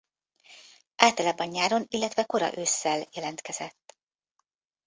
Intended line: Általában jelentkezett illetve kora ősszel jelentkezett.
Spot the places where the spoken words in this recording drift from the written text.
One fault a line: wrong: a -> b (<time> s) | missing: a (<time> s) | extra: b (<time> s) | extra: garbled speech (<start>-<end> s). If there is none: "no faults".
wrong: jelentkezett -> nyáron (1.5 s)